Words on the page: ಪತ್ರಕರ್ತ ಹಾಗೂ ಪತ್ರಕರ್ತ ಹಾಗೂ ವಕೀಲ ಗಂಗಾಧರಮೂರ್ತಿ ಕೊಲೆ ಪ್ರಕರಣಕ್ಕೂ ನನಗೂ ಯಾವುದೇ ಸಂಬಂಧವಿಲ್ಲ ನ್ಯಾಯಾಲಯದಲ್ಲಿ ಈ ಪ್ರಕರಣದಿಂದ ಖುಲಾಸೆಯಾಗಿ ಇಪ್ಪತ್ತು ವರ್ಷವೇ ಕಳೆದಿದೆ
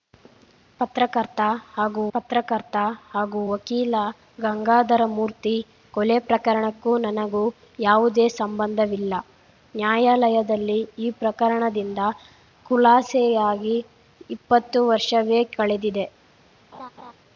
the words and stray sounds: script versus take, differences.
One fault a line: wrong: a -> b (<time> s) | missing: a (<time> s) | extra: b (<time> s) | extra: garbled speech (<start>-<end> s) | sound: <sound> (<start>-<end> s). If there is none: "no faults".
sound: laugh (16.7-17.1 s)